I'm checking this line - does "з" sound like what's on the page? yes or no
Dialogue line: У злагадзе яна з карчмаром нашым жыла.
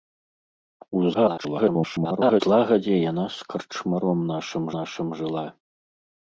yes